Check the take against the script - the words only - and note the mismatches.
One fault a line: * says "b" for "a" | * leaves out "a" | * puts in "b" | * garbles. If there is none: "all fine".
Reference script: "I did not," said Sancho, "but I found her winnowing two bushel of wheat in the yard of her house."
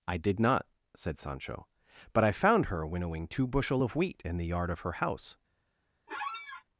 all fine